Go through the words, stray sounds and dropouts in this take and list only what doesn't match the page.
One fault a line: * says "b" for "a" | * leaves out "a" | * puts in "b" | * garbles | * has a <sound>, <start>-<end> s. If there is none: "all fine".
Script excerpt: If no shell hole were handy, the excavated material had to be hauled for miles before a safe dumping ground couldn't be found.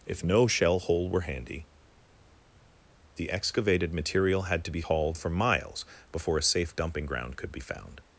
* says "could" for "couldn't"